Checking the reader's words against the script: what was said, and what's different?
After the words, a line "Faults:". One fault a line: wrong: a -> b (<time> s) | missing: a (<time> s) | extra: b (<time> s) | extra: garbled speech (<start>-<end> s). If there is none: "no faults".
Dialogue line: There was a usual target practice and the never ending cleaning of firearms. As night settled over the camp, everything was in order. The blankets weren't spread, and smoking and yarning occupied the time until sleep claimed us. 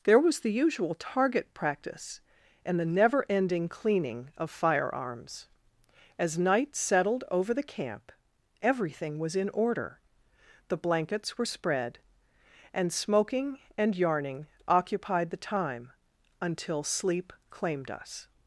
There was the usual target practice and the never ending cleaning of firearms. As night settled over the camp, everything was in order. The blankets were spread, and smoking and yarning occupied the time until sleep claimed us.
Faults:
wrong: a -> the (0.4 s)
wrong: weren't -> were (11.4 s)